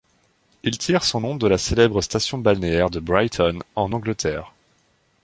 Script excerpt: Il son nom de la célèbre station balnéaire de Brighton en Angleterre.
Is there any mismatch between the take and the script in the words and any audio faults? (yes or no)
yes